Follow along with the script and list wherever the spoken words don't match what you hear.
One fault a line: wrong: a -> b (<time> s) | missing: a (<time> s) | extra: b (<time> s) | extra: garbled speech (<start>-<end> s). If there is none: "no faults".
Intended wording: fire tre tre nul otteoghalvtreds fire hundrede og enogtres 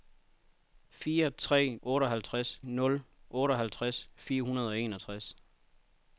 wrong: tre -> otteoghalvtreds (1.8 s)